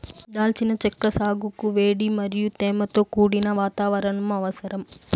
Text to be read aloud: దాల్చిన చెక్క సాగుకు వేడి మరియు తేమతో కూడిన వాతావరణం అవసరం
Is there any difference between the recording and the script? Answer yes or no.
no